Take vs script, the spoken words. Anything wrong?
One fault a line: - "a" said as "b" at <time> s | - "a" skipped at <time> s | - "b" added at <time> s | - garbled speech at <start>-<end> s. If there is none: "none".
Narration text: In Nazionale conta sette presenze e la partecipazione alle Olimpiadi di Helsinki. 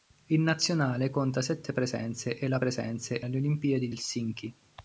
- "partecipazione" said as "presenze" at 2.6 s
- "di" skipped at 3.9 s